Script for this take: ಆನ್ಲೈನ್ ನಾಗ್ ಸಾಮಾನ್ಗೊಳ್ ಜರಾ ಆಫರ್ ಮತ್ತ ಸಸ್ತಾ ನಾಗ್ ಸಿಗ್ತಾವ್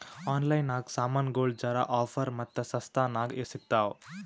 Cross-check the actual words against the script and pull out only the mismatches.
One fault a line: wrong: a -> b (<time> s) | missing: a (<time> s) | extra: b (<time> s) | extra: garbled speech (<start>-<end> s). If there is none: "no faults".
no faults